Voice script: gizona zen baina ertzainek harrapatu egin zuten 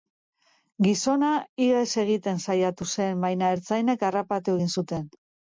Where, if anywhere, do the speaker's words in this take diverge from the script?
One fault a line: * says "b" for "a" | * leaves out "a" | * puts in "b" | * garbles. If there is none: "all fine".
* puts in "ihes egiten saiatu"